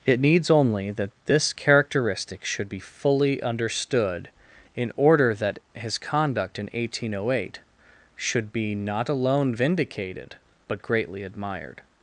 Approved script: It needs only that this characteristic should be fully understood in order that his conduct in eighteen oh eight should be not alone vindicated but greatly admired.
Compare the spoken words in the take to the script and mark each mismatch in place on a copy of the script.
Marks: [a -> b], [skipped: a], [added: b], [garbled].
It needs only that this characteristic should be fully understood in order that his conduct in eighteen oh eight should be not alone vindicated but greatly admired.